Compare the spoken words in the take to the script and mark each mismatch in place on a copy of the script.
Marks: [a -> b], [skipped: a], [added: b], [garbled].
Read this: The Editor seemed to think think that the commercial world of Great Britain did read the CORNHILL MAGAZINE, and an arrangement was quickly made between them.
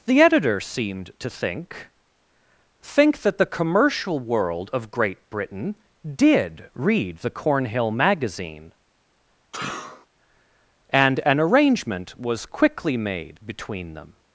The Editor seemed to think think that the commercial world of Great Britain did read the CORNHILL MAGAZINE, and an arrangement was quickly made between them.